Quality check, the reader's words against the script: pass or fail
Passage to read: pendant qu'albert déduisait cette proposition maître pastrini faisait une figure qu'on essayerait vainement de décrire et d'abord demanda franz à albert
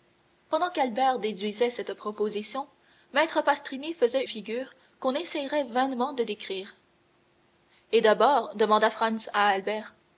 fail